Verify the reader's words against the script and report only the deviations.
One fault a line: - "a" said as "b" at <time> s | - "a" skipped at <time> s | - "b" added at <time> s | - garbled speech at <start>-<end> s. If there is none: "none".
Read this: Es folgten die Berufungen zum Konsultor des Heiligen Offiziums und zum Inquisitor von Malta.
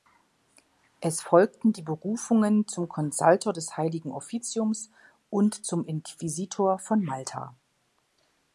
none